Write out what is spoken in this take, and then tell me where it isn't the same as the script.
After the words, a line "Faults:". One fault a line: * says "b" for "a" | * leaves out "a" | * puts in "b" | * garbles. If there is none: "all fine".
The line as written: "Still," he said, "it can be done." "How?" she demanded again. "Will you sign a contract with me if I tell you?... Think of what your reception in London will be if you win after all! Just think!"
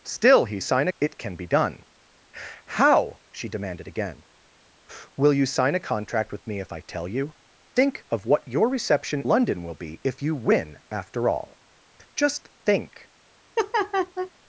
"Still," he sign, "it can be done." "How?" she demanded again. "Will you sign a contract with me if I tell you?... Think of what your reception London will be if you win after all! Just think!"
Faults:
* says "sign" for "said"
* leaves out "in"